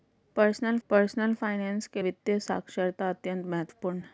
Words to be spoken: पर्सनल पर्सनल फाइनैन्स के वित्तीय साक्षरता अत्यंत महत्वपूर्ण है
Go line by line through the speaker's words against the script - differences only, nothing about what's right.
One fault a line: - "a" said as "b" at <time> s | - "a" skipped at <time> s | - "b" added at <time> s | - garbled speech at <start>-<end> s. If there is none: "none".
none